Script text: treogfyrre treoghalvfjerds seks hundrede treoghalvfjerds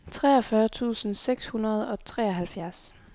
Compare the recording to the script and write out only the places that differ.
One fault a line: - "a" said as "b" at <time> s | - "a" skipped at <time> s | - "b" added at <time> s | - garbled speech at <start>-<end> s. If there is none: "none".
- "treoghalvfjerds" said as "tusind" at 0.7 s
- "og" added at 1.9 s